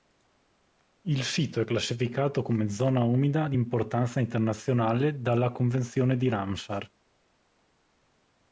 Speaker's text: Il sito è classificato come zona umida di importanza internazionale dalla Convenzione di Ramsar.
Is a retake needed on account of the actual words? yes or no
no